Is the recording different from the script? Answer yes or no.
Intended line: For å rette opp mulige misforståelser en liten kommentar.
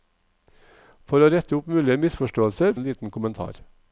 no